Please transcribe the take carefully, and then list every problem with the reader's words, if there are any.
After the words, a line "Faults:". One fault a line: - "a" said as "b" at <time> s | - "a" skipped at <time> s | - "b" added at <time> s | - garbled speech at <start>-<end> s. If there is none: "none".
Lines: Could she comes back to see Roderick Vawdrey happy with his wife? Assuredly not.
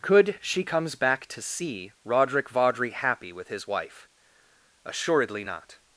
Could she comes back to see Roderick Vawdrey happy with his wife? Assuredly not.
Faults:
none